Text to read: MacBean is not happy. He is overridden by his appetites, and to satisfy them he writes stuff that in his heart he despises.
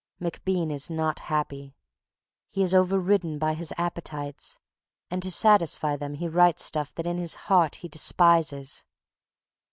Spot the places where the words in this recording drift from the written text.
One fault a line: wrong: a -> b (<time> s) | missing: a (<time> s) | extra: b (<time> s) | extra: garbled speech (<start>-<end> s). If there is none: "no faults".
no faults